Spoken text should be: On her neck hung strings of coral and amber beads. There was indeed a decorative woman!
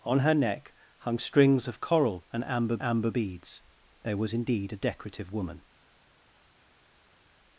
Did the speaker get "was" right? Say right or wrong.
right